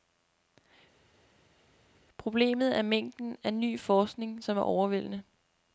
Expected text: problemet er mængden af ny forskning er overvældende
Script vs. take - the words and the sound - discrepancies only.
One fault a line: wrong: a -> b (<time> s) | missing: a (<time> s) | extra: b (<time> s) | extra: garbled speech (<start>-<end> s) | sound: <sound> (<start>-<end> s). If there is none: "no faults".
extra: som (4.4 s)